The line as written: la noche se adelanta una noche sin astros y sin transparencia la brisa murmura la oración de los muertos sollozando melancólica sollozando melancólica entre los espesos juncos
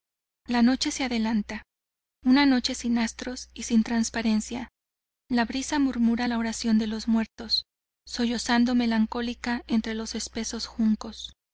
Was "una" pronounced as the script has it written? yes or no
yes